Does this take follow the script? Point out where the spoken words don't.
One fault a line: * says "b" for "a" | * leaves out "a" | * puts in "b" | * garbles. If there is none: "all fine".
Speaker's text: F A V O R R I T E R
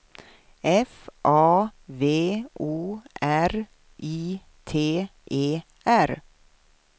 * leaves out "R"